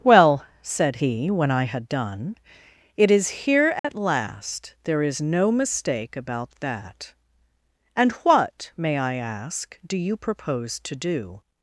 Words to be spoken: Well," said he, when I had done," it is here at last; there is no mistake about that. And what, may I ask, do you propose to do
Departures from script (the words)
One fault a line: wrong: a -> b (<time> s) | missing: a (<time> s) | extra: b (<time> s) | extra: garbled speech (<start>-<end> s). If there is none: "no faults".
no faults